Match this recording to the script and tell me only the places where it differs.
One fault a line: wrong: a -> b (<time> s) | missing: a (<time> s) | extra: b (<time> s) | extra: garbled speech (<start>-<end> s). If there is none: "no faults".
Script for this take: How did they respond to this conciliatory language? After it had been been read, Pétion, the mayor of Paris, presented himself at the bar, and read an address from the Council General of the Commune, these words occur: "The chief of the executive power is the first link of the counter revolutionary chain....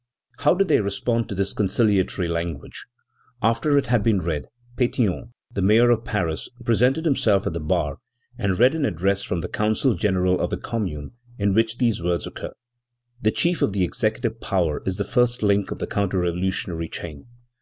missing: been (4.2 s)
extra: in which (11.4 s)